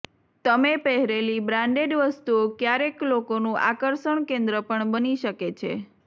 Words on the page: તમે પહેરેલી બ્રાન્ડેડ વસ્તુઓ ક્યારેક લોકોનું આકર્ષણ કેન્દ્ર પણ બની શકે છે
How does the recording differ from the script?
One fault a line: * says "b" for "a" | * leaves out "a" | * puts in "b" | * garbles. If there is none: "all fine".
all fine